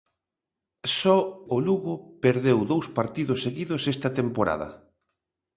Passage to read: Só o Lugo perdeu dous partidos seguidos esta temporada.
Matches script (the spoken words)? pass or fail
pass